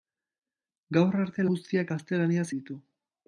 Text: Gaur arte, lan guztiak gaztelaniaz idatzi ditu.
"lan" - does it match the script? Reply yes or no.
no